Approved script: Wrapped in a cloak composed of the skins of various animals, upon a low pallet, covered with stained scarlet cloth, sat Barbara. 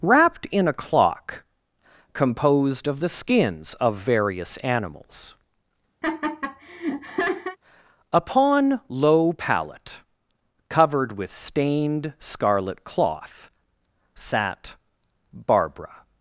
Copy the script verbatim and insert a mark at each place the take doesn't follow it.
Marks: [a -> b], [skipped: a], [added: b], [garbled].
Wrapped in a [cloak -> clock] composed of the skins of various animals, upon [skipped: a] low pallet, covered with stained scarlet cloth, sat Barbara.